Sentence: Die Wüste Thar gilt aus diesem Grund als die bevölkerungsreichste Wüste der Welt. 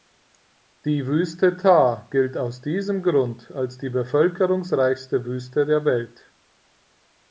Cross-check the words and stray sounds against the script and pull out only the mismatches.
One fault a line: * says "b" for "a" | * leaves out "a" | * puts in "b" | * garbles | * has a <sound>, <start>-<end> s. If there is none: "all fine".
all fine